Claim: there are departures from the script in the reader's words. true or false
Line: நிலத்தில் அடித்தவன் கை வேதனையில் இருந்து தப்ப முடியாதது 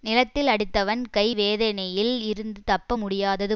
false